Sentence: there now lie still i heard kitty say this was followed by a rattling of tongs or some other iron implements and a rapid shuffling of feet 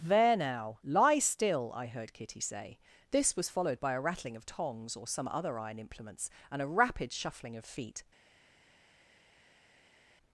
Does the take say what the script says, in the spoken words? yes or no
yes